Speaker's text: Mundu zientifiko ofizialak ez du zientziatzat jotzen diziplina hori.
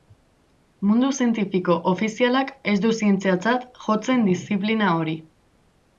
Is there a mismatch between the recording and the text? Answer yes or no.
no